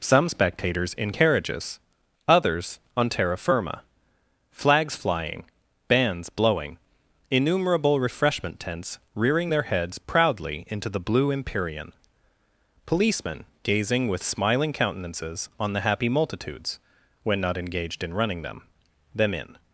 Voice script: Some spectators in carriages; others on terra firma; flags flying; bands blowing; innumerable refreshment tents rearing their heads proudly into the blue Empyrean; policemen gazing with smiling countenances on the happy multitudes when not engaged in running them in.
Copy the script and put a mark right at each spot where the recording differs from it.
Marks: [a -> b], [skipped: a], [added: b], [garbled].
Some spectators in carriages; others on terra firma; flags flying; bands blowing; innumerable refreshment tents rearing their heads proudly into the blue Empyrean; policemen gazing with smiling countenances on the happy multitudes when not engaged in running them [added: them] in.